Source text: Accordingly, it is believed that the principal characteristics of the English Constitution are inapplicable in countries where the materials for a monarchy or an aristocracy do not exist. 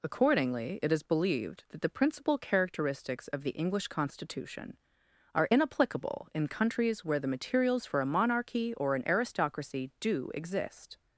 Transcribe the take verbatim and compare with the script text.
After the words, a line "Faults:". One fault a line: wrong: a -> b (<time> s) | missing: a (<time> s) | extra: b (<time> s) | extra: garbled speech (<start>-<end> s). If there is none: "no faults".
Accordingly, it is believed that the principal characteristics of the English Constitution are inapplicable in countries where the materials for a monarchy or an aristocracy do exist.
Faults:
missing: not (10.3 s)